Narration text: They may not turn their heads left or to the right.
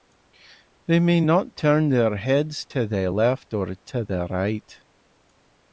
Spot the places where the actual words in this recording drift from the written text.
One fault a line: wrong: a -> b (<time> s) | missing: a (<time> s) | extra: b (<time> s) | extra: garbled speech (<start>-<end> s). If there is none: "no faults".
extra: to the (2.7 s)